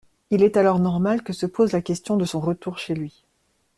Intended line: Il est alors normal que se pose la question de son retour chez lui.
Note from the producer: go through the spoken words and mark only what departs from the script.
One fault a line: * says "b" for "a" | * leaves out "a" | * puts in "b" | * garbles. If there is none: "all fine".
all fine